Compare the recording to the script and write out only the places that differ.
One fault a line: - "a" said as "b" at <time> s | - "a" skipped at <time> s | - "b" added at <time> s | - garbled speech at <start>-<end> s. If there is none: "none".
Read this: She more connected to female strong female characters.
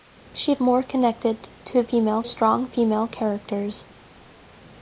none